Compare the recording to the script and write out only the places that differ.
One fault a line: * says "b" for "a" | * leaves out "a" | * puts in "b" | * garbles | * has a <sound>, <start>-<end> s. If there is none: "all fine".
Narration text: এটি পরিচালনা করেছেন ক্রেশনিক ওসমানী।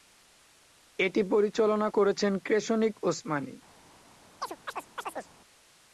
* has a chirp, 4.4-5.3 s